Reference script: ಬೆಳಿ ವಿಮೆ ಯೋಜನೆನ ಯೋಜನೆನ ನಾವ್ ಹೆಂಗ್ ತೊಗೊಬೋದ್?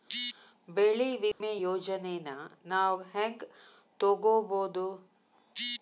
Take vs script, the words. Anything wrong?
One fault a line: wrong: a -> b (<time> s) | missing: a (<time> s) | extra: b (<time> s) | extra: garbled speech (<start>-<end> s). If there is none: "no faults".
missing: ಯೋಜನೆನ (2.3 s)